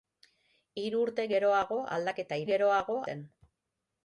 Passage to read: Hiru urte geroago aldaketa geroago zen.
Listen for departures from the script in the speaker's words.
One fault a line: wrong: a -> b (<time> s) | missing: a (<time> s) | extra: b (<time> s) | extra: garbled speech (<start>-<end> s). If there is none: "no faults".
no faults